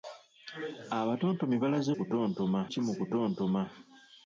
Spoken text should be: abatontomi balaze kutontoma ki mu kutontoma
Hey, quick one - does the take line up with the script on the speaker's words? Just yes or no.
yes